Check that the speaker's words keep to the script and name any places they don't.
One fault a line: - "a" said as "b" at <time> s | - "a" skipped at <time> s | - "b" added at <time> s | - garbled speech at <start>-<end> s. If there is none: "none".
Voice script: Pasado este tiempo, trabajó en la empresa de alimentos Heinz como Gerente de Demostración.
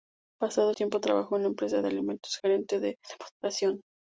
- "este" skipped at 0.7 s
- "Heinz como" skipped at 2.4 s